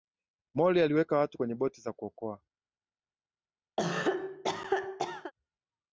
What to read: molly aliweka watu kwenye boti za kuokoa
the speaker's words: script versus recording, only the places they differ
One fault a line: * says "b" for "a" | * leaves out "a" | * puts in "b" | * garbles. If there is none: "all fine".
all fine